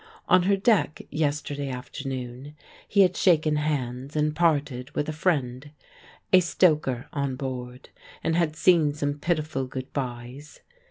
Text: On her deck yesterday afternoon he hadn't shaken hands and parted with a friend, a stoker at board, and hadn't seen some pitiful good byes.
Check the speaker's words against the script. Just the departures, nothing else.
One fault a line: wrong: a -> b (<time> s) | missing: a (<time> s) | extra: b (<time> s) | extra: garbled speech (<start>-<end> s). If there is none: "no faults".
wrong: hadn't -> had (3.0 s)
wrong: at -> on (7.1 s)
wrong: hadn't -> had (8.3 s)